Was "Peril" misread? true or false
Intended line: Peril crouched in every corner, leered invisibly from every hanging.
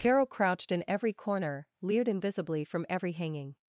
true